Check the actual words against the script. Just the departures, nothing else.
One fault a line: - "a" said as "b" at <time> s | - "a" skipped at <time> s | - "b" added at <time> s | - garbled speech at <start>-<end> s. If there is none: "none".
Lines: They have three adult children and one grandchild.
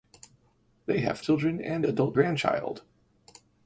- "three adult" skipped at 1.2 s
- "one" said as "adult" at 1.8 s